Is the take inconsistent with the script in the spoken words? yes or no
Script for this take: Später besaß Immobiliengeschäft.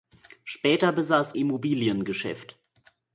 no